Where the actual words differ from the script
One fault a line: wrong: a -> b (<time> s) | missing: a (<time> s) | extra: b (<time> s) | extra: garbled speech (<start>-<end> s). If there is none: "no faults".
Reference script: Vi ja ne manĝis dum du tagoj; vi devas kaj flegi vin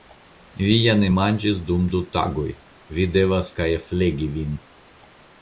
no faults